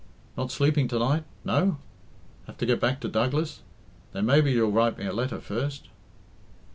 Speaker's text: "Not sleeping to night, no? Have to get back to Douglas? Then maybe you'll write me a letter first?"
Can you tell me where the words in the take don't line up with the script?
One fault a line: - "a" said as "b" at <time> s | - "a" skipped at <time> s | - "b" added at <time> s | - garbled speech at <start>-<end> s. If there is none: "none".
none